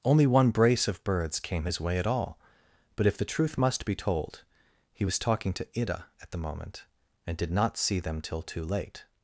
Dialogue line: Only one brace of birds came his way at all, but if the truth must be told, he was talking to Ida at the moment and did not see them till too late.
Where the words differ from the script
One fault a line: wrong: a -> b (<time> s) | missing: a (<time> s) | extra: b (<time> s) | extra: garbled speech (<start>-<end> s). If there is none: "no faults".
no faults